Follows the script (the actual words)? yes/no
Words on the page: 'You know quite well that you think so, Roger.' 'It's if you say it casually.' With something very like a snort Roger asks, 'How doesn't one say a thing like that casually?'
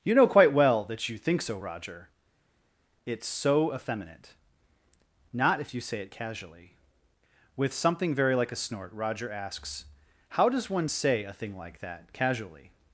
no